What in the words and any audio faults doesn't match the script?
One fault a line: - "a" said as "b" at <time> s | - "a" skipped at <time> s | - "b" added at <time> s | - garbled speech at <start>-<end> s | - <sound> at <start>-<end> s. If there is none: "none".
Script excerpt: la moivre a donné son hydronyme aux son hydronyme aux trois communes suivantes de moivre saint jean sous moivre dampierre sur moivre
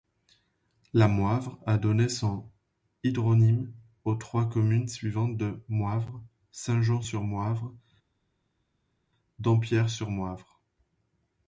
- "son hydronyme aux" skipped at 4.2 s
- "sous" said as "sur" at 7.0 s